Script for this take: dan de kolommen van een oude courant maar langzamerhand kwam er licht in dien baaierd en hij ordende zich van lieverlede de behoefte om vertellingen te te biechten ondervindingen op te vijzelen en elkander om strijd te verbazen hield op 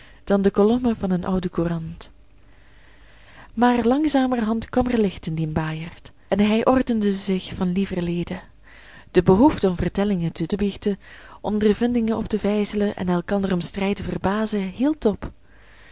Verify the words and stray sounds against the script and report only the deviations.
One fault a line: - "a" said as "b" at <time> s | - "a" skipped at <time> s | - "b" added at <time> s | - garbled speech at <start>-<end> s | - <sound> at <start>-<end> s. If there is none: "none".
none